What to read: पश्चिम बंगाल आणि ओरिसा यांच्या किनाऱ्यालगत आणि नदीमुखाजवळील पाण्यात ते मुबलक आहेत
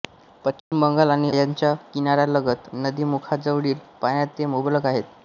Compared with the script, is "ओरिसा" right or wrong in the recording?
wrong